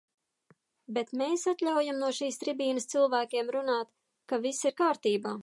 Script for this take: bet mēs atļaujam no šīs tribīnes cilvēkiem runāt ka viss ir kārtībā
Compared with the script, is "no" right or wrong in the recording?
right